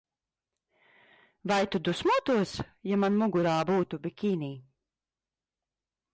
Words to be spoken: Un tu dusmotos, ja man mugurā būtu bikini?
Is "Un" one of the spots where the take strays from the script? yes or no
yes